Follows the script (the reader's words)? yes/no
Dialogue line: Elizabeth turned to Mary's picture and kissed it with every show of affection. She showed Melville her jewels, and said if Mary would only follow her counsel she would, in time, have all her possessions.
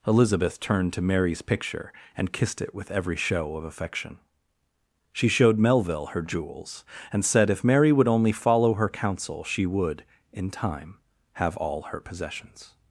yes